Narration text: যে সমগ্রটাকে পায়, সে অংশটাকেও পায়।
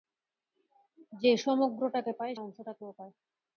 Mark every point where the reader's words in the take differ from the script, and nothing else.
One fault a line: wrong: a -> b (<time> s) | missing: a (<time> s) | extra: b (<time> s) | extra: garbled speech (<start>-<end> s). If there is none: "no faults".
missing: সে (2.3 s)